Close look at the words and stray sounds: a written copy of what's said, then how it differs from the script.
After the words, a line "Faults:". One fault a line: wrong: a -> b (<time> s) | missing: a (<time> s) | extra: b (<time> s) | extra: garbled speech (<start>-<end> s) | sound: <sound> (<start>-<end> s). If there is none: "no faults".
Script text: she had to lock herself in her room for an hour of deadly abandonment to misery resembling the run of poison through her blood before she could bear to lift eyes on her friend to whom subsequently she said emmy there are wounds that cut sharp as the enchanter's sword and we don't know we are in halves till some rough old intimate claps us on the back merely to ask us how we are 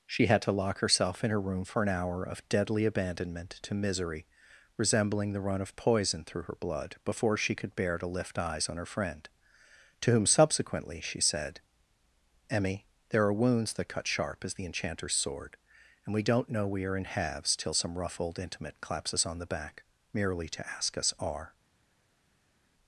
she had to lock herself in her room for an hour of deadly abandonment to misery resembling the run of poison through her blood before she could bear to lift eyes on her friend to whom subsequently she said emmy there are wounds that cut sharp as the enchanter's sword and we don't know we are in halves till some rough old intimate claps us on the back merely to ask us are
Faults:
missing: how we (21.1 s)